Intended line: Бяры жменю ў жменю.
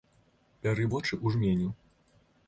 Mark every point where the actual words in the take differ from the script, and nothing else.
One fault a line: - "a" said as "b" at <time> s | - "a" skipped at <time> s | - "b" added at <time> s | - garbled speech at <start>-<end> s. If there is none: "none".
- "жменю" said as "вочы" at 0.9 s